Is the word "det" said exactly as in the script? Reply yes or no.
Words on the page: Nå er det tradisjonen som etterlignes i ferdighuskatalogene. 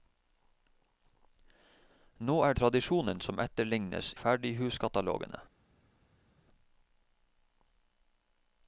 no